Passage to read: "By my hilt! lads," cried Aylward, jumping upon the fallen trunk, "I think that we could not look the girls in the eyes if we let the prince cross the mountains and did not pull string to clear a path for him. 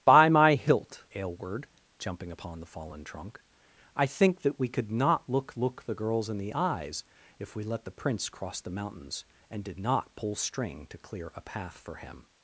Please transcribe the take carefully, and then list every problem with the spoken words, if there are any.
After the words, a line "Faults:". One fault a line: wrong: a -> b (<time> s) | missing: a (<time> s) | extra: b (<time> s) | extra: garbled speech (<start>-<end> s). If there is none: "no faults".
"By my hilt! Aylward, jumping upon the fallen trunk, "I think that we could not look look the girls in the eyes if we let the prince cross the mountains and did not pull string to clear a path for him.
Faults:
missing: lads cried (1.1 s)
extra: look (5.6 s)